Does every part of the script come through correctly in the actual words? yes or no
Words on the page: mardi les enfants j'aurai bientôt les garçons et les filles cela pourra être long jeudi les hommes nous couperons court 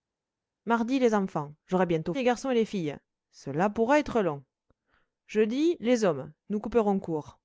yes